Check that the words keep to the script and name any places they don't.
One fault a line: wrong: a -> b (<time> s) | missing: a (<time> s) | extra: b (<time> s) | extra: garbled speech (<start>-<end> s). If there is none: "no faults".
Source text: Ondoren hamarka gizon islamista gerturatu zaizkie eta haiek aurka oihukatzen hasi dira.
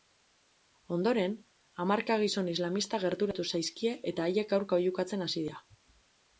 no faults